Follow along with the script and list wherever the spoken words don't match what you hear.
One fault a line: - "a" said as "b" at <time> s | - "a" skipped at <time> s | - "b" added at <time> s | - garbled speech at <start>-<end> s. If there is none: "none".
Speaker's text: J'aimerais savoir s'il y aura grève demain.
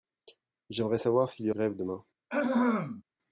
- "aura" skipped at 1.5 s